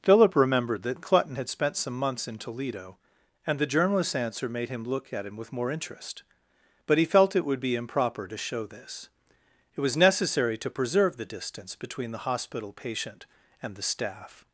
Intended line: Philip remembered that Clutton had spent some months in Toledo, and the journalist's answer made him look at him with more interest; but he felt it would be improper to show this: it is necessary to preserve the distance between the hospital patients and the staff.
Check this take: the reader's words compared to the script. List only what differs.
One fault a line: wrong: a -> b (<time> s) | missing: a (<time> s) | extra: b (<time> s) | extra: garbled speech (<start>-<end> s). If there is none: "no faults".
wrong: is -> was (9.8 s)
wrong: patients -> patient (12.7 s)